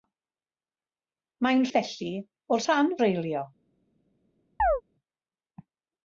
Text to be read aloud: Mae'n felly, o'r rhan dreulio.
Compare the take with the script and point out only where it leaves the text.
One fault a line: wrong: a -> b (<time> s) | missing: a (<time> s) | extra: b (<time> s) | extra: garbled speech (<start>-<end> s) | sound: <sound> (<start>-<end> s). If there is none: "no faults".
sound: chirp (4.6-4.8 s)